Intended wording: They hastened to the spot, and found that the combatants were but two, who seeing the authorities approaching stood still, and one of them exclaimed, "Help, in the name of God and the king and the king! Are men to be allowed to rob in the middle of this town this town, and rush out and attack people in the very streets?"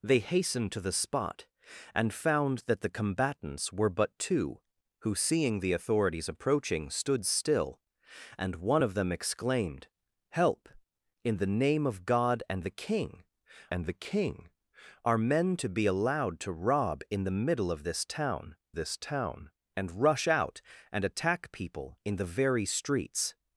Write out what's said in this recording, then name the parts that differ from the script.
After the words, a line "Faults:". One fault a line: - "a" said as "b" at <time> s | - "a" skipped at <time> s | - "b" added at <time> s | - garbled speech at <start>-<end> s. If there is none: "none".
They hastened to the spot, and found that the combatants were but two, who seeing the authorities approaching stood still, and one of them exclaimed, "Help, in the name of God and the king and the king! Are men to be allowed to rob in the middle of this town this town, and rush out and attack people in the very streets?"
Faults:
none